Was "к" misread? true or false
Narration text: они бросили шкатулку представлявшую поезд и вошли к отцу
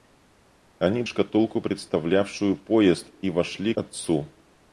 true